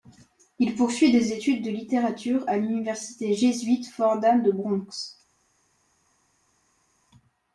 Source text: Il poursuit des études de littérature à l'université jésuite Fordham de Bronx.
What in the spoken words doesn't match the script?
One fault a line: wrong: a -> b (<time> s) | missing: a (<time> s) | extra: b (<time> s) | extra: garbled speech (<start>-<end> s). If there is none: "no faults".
no faults